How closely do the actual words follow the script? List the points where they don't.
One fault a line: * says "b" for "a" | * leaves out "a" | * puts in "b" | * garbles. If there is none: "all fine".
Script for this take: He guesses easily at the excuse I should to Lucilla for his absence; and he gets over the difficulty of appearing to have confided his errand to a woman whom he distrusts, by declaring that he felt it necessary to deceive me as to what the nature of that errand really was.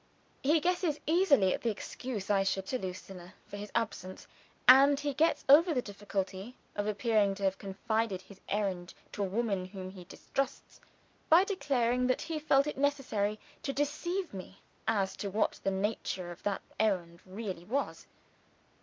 all fine